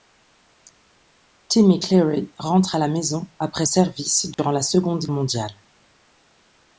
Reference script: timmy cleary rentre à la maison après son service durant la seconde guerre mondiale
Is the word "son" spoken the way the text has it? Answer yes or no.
no